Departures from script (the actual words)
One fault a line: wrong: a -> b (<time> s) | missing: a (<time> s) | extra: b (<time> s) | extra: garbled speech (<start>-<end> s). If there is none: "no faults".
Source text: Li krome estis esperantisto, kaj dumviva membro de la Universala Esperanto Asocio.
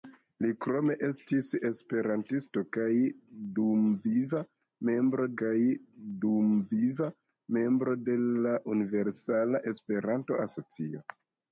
extra: kaj dumviva membro (5.4 s)